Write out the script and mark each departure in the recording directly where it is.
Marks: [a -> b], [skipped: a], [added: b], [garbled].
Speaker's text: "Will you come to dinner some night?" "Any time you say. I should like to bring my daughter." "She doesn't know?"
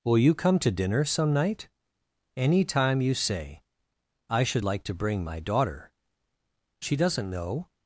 "Will you come to dinner some night?" "Any time you say. I should like to bring my daughter." "She doesn't know?"